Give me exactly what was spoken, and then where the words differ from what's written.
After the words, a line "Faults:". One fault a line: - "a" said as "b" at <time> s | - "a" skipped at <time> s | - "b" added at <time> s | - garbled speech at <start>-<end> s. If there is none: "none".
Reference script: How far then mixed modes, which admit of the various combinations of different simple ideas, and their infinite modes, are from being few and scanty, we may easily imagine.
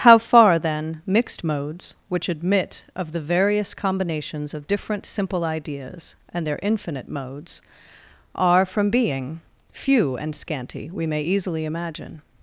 How far then mixed modes, which admit of the various combinations of different simple ideas, and their infinite modes, are from being few and scanty, we may easily imagine.
Faults:
none